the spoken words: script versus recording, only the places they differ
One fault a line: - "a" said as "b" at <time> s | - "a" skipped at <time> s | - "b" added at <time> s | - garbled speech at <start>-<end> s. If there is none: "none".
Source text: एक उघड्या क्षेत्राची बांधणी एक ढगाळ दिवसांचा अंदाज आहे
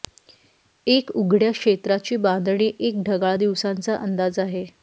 none